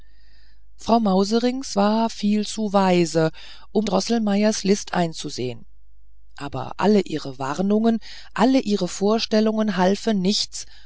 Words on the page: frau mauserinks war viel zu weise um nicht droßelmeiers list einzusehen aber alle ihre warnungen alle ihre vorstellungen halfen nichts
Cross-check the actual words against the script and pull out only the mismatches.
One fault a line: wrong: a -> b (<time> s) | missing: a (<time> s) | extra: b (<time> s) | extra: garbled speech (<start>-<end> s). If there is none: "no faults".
missing: nicht (3.9 s)